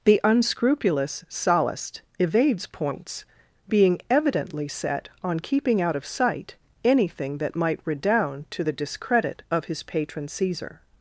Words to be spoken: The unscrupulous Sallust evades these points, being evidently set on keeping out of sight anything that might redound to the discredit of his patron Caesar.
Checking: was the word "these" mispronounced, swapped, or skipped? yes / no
yes